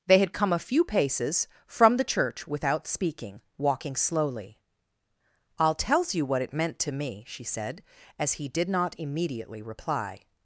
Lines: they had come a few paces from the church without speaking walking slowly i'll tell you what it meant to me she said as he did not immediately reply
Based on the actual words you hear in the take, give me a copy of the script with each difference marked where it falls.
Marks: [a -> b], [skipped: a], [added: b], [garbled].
they had come a few paces from the church without speaking walking slowly i'll [tell -> tells] you what it meant to me she said as he did not immediately reply